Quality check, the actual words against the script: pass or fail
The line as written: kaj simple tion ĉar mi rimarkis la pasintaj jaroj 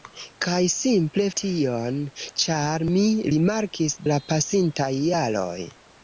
pass